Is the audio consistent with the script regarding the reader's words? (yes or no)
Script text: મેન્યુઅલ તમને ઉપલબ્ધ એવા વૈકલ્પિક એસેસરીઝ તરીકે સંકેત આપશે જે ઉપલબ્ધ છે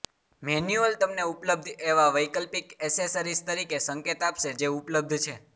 yes